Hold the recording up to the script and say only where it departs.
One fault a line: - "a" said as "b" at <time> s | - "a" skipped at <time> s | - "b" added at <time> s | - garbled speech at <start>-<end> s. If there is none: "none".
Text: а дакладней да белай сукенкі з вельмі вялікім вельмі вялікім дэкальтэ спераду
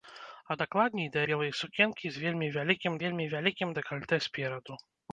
none